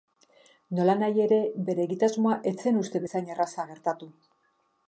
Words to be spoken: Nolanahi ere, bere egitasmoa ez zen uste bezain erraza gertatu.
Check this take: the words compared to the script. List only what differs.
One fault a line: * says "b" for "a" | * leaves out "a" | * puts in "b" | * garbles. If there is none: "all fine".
all fine